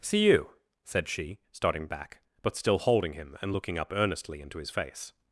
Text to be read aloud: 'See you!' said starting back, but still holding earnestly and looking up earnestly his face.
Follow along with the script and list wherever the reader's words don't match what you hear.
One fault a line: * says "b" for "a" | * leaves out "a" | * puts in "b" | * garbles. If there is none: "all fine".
* puts in "she"
* says "him" for "earnestly"
* puts in "into"